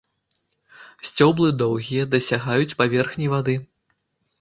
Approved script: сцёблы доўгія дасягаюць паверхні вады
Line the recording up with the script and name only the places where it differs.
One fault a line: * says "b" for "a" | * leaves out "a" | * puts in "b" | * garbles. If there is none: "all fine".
all fine